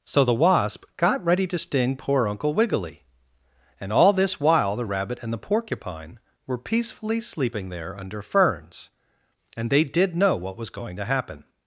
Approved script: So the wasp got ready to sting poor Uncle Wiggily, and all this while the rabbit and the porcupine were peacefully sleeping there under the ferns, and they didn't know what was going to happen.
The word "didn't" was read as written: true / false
false